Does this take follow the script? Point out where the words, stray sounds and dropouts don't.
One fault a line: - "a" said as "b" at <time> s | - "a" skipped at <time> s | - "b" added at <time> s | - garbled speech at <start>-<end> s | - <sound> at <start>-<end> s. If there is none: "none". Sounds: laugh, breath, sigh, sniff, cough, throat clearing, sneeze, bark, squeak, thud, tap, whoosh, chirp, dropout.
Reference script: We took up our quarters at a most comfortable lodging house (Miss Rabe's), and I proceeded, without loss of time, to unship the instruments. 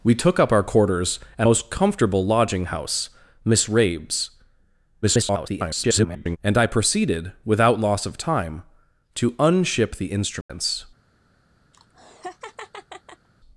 - "a" skipped at 1.5 s
- garbled speech at 5.0-6.4 s
- dropout at 10.4-10.5 s
- laugh at 11.7-13.3 s